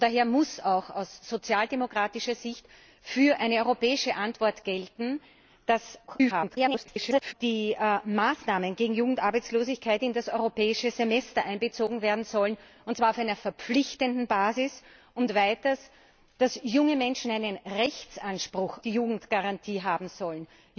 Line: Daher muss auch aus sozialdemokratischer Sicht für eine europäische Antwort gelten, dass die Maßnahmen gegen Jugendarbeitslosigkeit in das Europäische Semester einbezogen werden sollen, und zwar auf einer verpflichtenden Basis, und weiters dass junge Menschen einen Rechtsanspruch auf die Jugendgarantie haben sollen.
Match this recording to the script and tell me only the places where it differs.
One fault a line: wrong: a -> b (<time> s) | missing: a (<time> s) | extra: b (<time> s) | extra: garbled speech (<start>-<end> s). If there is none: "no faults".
extra: garbled speech (6.1-7.3 s)
missing: auf (18.8 s)